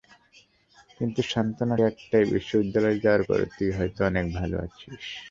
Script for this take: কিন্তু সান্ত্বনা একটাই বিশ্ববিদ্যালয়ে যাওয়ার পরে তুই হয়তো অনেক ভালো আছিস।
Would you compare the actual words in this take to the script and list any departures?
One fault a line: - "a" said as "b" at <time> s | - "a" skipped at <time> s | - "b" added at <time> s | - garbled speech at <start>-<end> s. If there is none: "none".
none